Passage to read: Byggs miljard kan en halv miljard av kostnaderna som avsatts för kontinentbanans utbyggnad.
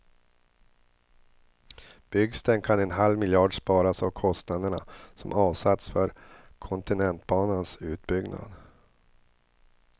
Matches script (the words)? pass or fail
fail